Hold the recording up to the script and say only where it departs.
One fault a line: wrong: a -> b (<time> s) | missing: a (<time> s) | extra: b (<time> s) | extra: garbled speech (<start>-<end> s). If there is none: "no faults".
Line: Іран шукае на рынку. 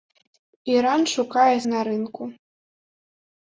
no faults